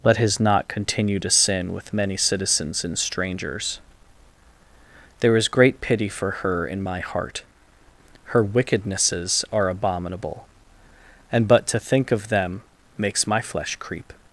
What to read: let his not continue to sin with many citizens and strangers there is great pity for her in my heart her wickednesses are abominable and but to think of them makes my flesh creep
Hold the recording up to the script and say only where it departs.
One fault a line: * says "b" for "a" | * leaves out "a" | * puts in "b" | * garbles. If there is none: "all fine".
all fine